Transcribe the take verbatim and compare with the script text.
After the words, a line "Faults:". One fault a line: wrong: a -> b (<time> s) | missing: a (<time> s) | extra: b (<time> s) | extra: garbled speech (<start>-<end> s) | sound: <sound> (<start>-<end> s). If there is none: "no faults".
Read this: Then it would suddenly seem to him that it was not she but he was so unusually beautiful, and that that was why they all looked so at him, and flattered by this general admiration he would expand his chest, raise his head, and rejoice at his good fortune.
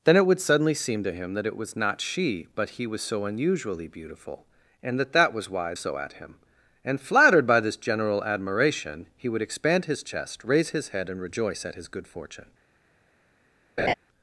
Then it would suddenly seem to him that it was not she but he was so unusually beautiful, and that that was why so at him, and flattered by this general admiration he would expand his chest, raise his head, and rejoice at his good fortune.
Faults:
missing: they all looked (5.7 s)
sound: laugh (13.8-13.9 s)